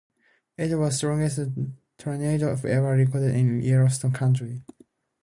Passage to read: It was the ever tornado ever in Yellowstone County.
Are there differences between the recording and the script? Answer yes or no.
yes